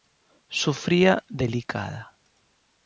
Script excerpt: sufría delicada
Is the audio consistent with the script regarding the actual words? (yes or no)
yes